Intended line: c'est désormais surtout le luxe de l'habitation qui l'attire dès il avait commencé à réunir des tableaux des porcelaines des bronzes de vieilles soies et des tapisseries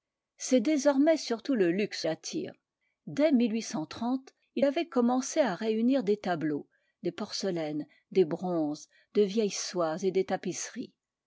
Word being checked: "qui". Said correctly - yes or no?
no